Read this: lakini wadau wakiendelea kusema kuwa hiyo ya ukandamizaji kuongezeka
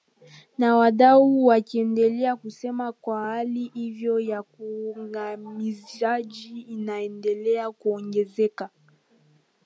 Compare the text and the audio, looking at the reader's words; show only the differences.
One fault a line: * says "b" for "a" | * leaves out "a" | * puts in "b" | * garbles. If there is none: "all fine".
* says "na" for "lakini"
* puts in "hali"
* puts in "inaendelea"